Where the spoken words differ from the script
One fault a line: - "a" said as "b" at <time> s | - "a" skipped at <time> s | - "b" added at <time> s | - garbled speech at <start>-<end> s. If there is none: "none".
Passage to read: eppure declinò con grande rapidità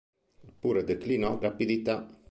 - "con grande" skipped at 1.4 s